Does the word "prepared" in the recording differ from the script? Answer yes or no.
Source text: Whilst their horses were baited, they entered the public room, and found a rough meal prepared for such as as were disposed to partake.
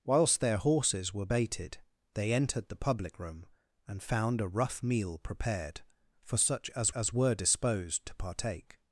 no